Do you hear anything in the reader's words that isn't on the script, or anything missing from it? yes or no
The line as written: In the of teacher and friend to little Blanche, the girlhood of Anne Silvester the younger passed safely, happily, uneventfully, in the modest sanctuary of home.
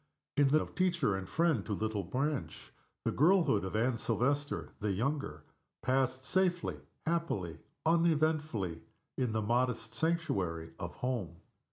no